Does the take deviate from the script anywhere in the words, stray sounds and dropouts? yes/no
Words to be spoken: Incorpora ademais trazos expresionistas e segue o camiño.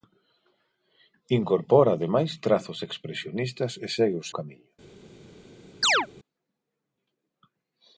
yes